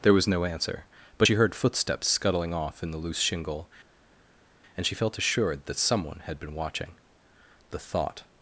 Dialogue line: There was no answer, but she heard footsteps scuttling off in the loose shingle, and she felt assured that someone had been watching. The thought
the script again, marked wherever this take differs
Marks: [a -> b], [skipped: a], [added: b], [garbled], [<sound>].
There was no answer, but she heard footsteps scuttling off in the loose shingle, and she felt assured that someone had been watching. The thought